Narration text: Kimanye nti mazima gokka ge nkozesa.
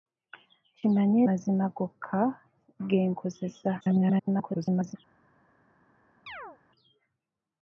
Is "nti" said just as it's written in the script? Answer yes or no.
no